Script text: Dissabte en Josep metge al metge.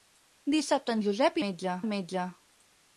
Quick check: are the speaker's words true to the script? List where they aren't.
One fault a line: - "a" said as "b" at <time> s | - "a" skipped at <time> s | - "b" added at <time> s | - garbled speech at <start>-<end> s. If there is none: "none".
none